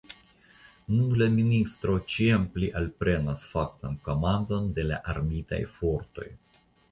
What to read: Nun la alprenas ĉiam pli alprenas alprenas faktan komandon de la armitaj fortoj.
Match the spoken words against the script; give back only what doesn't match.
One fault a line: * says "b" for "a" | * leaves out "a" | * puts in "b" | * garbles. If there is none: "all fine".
* says "ministro" for "alprenas"
* leaves out "alprenas"